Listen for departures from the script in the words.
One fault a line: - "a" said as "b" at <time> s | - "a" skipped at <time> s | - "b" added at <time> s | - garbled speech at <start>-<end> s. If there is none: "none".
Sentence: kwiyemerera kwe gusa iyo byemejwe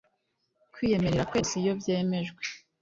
none